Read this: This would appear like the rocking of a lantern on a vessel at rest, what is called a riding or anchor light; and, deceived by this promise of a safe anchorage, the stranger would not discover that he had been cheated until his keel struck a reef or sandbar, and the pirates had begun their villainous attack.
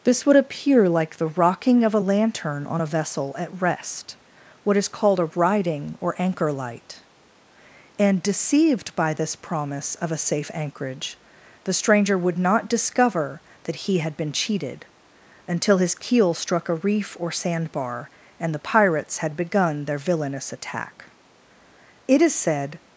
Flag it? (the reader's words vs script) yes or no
yes